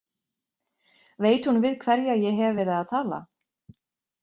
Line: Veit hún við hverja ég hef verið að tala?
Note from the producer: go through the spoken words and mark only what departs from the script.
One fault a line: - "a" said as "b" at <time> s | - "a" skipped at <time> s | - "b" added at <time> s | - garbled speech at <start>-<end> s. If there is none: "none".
none